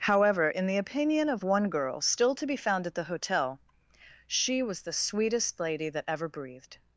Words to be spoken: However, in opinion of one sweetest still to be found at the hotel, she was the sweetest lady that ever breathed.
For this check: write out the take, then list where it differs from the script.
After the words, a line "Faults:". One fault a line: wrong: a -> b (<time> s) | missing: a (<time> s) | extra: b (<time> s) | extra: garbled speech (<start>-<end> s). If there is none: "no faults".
However, in the opinion of one girl still to be found at the hotel, she was the sweetest lady that ever breathed.
Faults:
extra: the (0.6 s)
wrong: sweetest -> girl (1.7 s)